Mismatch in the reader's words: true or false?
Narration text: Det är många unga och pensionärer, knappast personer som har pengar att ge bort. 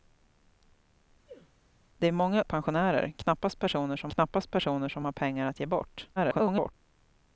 true